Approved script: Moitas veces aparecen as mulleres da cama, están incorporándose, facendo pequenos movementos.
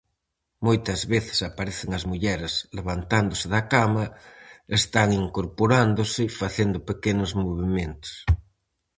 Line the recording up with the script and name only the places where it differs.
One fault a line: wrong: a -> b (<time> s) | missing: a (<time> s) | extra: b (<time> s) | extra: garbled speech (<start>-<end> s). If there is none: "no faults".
extra: levantándose (2.8 s)